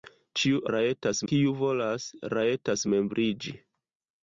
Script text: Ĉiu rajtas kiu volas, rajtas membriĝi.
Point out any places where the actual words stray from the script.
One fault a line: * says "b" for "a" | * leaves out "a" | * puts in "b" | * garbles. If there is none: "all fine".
all fine